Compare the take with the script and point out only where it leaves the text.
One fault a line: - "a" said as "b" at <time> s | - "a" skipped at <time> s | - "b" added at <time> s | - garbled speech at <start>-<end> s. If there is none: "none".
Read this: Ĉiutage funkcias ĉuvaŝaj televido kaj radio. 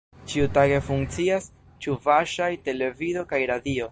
none